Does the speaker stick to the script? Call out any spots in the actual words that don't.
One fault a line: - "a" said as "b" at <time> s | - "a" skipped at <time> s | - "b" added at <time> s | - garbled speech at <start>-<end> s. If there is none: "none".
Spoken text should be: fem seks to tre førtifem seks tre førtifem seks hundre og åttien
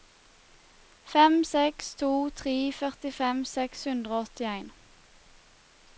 - "tre førtifem seks" skipped at 3.9 s